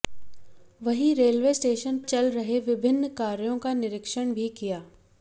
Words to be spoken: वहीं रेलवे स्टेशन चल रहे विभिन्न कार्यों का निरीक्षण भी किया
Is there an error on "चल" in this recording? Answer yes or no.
no